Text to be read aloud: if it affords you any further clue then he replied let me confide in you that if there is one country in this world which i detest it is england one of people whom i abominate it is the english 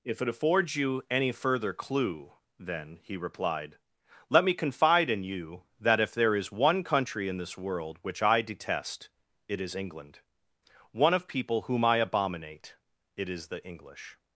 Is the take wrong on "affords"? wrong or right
right